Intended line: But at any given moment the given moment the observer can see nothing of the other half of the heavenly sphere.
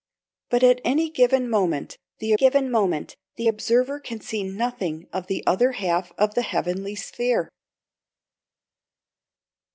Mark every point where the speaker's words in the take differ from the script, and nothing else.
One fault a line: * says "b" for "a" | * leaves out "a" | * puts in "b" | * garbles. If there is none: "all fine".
all fine